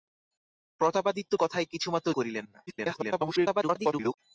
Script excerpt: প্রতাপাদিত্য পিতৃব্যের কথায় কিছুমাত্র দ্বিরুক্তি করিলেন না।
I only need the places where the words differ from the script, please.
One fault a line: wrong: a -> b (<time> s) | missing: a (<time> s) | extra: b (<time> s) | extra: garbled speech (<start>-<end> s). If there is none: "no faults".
missing: পিতৃব্যের (1.3 s)
missing: দ্বিরুক্তি (2.1 s)
extra: garbled speech (2.7-4.2 s)